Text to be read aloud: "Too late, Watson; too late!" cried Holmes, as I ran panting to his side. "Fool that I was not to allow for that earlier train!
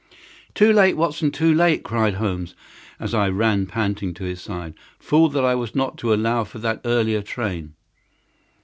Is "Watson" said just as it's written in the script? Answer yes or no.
yes